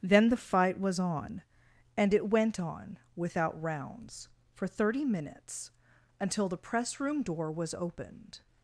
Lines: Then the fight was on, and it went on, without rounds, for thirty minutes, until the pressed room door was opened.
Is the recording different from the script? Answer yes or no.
yes